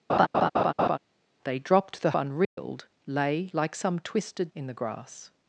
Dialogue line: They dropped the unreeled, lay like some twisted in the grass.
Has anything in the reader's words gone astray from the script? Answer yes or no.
no